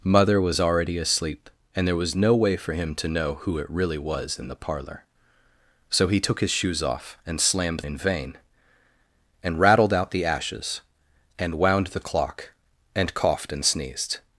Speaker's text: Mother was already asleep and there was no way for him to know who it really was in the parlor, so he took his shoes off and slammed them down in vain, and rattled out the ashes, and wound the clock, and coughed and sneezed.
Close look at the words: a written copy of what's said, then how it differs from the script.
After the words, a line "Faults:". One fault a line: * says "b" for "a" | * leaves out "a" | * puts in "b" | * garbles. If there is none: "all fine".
Mother was already asleep and there was no way for him to know who it really was in the parlor, so he took his shoes off and slammed in vain, and rattled out the ashes, and wound the clock, and coughed and sneezed.
Faults:
* leaves out "them down"